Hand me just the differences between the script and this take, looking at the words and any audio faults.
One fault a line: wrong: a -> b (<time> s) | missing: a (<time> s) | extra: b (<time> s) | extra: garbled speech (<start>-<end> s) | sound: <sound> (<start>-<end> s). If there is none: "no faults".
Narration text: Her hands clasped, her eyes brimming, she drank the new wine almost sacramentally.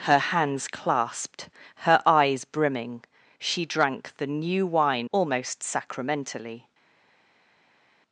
no faults